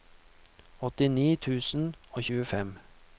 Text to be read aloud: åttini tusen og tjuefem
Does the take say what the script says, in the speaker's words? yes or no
yes